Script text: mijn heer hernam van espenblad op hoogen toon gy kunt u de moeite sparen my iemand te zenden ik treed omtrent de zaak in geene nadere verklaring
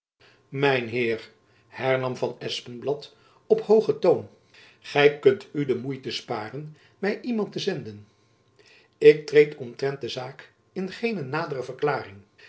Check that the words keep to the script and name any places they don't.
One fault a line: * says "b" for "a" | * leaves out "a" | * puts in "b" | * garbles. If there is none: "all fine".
all fine